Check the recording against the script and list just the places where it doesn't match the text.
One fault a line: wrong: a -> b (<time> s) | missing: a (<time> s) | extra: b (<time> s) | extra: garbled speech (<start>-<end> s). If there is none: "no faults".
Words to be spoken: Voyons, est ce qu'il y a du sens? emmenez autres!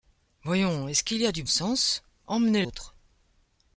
no faults